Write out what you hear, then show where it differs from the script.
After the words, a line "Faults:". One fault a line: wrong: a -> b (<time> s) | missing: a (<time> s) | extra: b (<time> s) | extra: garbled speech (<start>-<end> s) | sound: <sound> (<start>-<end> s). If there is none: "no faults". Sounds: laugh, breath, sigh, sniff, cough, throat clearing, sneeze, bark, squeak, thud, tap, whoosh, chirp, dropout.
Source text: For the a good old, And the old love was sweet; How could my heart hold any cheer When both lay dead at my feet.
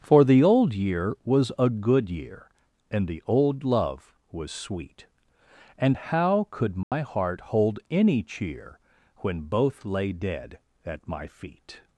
For the old year was a good year, And the old love was sweet; And how could my heart hold any cheer When both lay dead at my feet.
Faults:
extra: old year was (0.4 s)
wrong: old -> year (2.1 s)
extra: And (5.8 s)
sound: dropout (6.8-6.9 s)